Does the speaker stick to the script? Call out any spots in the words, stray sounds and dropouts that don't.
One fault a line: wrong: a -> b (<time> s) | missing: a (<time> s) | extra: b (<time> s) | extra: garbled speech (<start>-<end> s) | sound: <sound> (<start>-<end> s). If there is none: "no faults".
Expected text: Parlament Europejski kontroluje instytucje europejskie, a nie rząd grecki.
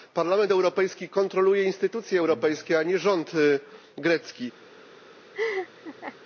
sound: laugh (5.3-6.2 s)